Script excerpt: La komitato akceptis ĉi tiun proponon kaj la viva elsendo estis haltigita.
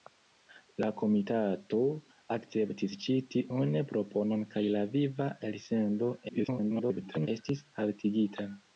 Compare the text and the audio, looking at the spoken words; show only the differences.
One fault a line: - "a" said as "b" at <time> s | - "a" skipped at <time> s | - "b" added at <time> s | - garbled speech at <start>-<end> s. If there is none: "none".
- garbled speech at 6.3-7.3 s